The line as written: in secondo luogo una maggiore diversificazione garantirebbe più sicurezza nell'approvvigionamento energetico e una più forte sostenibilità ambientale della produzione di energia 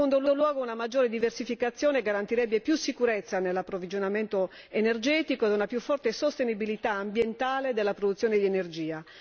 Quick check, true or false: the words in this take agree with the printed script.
false